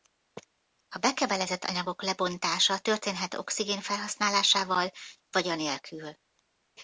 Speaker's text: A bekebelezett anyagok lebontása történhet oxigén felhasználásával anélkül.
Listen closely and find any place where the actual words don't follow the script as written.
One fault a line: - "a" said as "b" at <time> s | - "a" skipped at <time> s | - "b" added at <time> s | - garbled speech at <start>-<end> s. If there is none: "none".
- "vagy" added at 5.3 s